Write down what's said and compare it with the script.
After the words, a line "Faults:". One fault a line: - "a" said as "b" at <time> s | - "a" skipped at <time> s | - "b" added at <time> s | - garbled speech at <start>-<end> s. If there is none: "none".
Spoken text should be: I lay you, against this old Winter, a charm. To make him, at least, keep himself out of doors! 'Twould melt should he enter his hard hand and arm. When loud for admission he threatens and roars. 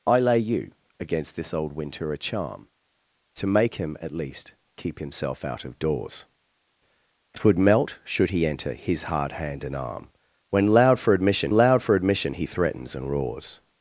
I lay you, against this old Winter, a charm. To make him, at least, keep himself out of doors! 'Twould melt should he enter his hard hand and arm. When loud for admission loud for admission he threatens and roars.
Faults:
- "loud for admission" added at 11.5 s